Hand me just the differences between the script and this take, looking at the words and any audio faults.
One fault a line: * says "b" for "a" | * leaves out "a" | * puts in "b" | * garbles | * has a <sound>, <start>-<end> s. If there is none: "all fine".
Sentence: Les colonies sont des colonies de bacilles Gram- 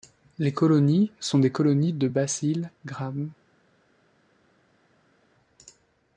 all fine